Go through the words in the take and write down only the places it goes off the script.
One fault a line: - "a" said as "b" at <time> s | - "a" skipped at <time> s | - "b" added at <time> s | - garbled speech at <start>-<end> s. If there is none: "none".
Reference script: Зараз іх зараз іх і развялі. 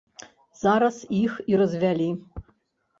- "зараз іх" skipped at 1.4 s